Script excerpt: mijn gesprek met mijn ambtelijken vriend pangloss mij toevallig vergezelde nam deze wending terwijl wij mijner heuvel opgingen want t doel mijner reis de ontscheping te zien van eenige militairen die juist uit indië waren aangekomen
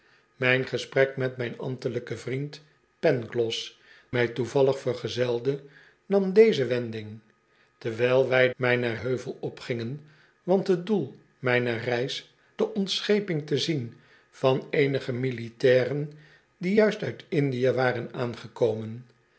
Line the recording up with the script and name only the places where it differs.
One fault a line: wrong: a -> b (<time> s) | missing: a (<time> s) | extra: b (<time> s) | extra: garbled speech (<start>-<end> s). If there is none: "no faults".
no faults